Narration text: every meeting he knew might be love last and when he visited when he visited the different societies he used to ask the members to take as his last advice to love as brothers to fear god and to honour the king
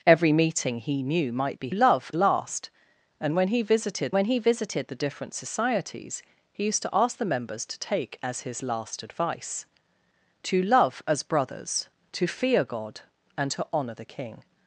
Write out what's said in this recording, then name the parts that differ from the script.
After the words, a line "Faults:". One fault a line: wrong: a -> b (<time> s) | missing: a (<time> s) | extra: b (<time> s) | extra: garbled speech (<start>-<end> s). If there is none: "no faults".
every meeting he knew might be love last and when he visited when he visited the different societies he used to ask the members to take as his last advice to love as brothers to fear god and to honour the king
Faults:
no faults